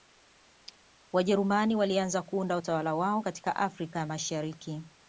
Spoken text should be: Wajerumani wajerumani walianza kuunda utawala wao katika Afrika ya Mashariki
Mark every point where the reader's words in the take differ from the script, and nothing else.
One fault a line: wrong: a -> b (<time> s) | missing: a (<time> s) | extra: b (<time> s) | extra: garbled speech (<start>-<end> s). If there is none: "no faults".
missing: wajerumani (1.8 s)